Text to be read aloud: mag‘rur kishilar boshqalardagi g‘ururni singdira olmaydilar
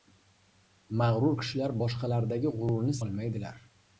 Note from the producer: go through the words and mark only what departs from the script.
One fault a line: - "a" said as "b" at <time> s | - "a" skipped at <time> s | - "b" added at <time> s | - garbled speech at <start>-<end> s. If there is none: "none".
- "singdira" skipped at 3.0 s